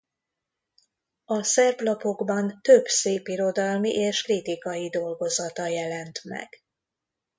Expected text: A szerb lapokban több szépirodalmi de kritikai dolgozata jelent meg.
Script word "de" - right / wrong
wrong